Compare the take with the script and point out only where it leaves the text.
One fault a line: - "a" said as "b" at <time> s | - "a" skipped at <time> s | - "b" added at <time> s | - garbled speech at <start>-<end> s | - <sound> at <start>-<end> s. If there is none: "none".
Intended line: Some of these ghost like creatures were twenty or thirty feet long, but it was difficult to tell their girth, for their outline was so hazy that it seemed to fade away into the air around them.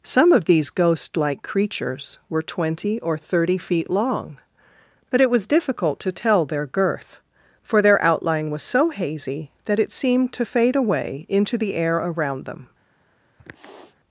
- sniff at 13.4-14.0 s